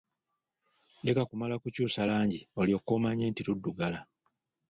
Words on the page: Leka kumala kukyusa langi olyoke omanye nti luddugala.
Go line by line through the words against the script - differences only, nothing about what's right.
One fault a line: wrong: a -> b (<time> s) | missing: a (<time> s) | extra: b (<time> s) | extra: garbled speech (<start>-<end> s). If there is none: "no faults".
no faults